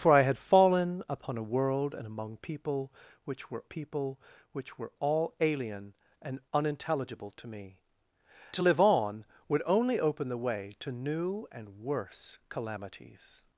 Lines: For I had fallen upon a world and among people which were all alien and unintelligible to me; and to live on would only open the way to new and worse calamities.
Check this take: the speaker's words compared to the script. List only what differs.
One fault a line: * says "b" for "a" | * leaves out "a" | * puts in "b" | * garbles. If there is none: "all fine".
* puts in "people which were"
* leaves out "and"